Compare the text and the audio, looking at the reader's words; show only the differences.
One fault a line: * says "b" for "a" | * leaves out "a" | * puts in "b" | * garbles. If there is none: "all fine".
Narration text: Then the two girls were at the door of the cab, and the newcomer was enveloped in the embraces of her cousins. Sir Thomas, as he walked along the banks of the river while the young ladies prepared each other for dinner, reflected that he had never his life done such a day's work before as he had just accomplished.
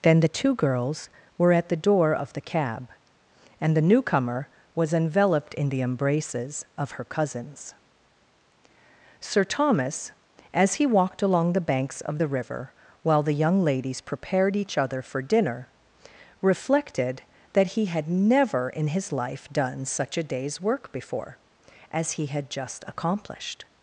* puts in "in"